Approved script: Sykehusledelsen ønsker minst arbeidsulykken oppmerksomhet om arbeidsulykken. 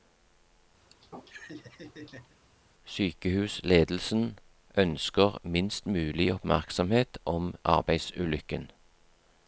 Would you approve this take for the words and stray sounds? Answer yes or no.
no